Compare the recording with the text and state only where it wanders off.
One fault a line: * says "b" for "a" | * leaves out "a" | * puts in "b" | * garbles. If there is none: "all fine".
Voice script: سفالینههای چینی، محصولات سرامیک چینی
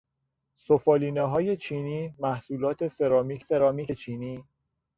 * puts in "سرامیک"